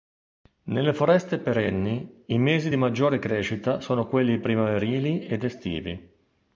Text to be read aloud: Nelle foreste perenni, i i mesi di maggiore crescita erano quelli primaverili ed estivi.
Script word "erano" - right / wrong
wrong